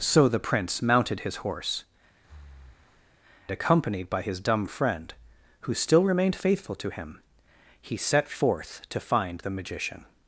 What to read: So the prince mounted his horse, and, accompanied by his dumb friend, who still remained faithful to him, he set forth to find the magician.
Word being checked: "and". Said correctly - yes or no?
no